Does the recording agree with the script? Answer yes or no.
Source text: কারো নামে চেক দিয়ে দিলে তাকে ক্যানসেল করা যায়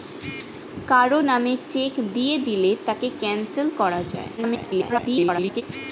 no